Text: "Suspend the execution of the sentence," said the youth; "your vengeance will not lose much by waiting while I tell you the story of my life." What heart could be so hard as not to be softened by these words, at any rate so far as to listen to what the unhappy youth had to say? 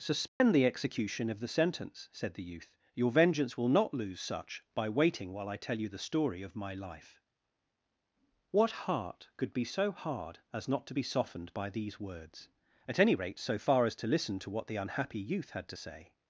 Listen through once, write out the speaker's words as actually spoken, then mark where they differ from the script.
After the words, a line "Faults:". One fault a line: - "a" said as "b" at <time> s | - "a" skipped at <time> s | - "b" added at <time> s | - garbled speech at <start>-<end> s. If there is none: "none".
"Suspend the execution of the sentence," said the youth; "your vengeance will not lose such by waiting while I tell you the story of my life." What heart could be so hard as not to be softened by these words, at any rate so far as to listen to what the unhappy youth had to say?
Faults:
- "much" said as "such" at 4.2 s